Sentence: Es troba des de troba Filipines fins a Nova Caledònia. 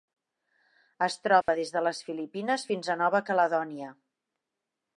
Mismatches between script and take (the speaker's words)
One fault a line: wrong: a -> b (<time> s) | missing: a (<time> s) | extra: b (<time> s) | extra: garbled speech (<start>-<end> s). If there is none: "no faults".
wrong: troba -> les (1.9 s)